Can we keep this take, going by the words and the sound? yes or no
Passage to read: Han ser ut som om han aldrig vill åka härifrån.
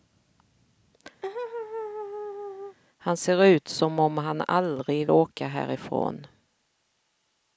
no